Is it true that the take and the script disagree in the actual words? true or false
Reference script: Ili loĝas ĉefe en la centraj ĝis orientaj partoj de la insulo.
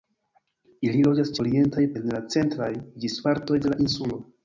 true